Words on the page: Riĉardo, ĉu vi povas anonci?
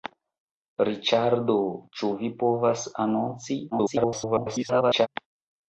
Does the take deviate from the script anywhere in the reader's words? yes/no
yes